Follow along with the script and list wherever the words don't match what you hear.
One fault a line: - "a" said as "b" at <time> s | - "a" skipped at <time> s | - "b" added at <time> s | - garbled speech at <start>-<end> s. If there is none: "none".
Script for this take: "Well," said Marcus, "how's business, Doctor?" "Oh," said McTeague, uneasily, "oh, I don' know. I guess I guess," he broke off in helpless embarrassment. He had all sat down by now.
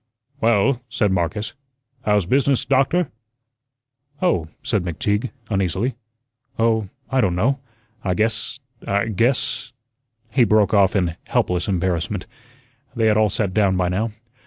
- "He" said as "They" at 12.9 s